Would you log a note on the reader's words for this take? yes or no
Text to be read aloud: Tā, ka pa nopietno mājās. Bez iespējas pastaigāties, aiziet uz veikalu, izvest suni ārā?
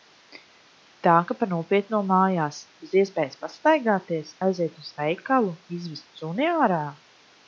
no